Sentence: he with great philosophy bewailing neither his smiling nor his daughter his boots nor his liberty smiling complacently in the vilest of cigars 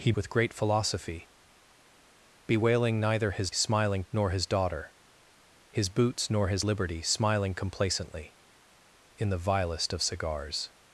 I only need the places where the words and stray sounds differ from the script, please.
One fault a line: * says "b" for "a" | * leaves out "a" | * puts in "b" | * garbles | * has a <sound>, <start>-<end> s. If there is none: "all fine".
all fine